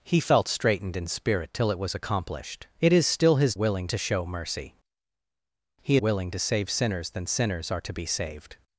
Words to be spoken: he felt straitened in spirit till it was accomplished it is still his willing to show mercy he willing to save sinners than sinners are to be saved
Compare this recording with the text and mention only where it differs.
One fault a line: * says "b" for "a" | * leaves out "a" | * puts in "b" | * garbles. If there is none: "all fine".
all fine